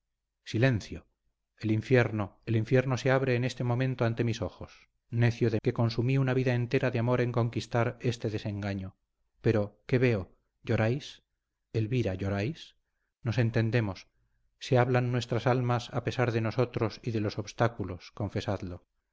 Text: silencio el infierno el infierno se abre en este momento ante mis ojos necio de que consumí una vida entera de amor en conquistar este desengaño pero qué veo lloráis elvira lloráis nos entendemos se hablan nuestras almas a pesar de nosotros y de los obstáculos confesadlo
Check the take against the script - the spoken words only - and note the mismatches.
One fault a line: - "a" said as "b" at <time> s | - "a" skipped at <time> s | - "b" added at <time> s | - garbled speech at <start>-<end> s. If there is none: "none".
none